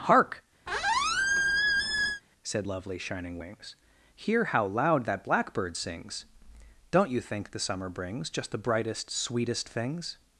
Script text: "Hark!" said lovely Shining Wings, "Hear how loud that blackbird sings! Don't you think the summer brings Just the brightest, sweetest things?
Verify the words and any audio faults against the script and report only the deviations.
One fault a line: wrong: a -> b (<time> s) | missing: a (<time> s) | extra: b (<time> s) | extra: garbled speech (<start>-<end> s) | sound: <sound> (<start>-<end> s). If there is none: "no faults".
sound: squeak (0.7-2.2 s)